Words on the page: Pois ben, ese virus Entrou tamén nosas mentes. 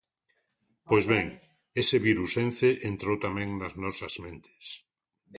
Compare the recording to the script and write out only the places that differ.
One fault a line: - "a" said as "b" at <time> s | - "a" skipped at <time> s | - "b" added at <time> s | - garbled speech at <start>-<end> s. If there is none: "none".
- "Ence" added at 2.5 s
- "nas" added at 3.6 s